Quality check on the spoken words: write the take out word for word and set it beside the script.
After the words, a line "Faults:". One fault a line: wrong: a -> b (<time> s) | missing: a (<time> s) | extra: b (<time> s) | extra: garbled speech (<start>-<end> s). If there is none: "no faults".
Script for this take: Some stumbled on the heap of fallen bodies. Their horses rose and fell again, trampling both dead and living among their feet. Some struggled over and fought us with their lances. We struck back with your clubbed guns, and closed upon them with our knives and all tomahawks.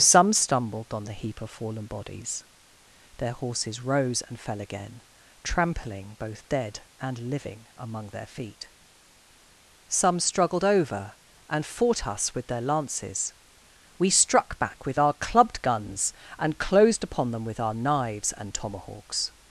Some stumbled on the heap of fallen bodies. Their horses rose and fell again, trampling both dead and living among their feet. Some struggled over and fought us with their lances. We struck back with our clubbed guns, and closed upon them with our knives and tomahawks.
Faults:
wrong: your -> our (15.0 s)
missing: all (18.6 s)